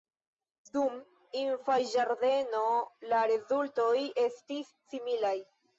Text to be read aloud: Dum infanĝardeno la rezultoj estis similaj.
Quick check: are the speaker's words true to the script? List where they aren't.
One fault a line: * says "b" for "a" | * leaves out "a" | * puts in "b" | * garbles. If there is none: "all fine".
all fine